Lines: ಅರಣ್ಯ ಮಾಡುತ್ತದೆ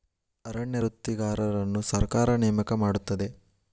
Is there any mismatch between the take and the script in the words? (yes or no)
yes